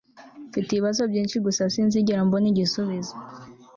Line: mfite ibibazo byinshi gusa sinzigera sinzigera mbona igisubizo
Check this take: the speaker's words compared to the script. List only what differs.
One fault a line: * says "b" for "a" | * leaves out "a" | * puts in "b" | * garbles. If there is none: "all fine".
* leaves out "sinzigera"